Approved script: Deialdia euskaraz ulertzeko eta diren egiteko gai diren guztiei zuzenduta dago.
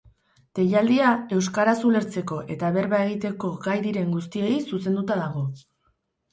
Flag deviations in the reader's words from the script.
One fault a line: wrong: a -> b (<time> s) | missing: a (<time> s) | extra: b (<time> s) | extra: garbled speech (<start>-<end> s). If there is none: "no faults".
wrong: diren -> berba (2.8 s)